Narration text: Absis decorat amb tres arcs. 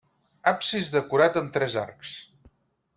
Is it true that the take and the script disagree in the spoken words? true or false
false